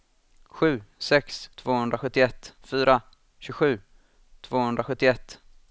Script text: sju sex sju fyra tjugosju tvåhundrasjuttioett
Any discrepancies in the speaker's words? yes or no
yes